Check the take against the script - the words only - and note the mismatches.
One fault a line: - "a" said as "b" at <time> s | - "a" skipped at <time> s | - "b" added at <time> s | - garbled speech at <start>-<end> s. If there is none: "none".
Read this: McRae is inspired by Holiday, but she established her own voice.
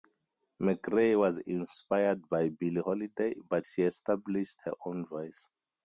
- "is" said as "was" at 1.1 s
- "Billie" added at 2.5 s